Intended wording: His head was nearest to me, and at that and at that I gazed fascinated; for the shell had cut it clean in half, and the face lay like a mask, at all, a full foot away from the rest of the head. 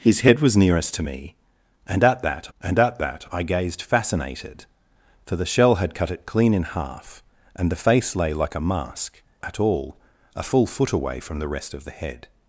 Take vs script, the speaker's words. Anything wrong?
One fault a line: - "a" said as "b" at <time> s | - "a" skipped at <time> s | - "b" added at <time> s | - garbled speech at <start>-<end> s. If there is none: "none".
none